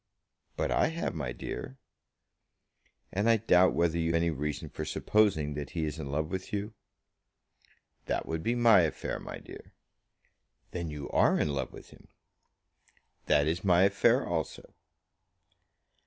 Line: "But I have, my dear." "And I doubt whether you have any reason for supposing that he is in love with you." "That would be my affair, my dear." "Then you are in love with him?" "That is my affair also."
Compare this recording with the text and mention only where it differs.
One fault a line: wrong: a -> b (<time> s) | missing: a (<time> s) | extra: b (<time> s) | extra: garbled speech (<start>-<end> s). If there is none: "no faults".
missing: have (4.2 s)